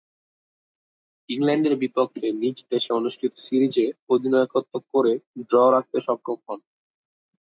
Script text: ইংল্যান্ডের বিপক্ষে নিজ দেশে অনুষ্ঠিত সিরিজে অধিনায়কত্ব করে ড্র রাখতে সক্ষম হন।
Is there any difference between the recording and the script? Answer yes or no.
no